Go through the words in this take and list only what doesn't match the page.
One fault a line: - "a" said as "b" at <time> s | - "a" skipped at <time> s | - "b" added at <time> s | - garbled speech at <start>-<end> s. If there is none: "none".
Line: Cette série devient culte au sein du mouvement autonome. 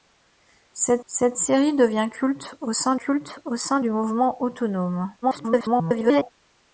- "cette" added at 1.1 s
- "culte au sein" added at 3.0 s
- garbled speech at 5.2-6.3 s